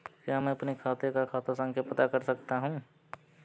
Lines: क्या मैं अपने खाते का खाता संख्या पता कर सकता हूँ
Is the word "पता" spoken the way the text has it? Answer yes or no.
yes